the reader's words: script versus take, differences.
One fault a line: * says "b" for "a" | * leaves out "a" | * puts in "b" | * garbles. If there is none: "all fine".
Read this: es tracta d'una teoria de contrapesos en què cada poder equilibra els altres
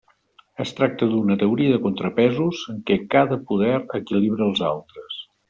all fine